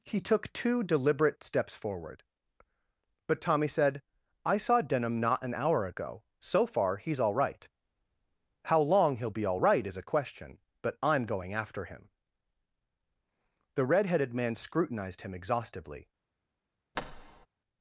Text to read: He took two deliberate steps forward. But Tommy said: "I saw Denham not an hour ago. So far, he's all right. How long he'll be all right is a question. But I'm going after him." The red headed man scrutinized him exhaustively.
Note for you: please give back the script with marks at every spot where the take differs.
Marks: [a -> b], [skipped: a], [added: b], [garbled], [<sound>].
He took two deliberate steps forward. But Tommy said: "I saw Denham not an hour ago. So far, he's all right. How long he'll be all right is a question. But I'm going after him." The red headed man scrutinized him exhaustively. [thud]